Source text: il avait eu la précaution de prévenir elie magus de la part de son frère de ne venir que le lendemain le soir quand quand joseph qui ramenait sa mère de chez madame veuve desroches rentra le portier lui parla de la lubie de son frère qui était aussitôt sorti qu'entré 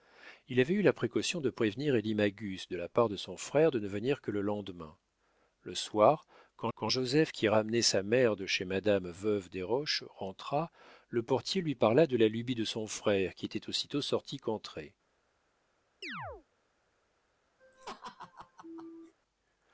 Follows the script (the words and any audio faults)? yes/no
no